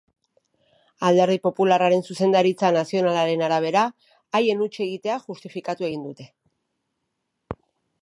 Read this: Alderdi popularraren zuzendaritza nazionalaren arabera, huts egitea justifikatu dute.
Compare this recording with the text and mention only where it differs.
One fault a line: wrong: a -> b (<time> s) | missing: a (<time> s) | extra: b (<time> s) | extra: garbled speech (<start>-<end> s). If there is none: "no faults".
extra: haien (4.4 s)
extra: egin (5.9 s)